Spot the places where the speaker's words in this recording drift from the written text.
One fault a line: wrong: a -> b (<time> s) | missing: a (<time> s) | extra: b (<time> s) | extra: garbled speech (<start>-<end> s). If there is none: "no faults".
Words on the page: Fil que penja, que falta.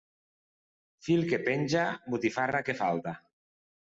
extra: botifarra (2.1 s)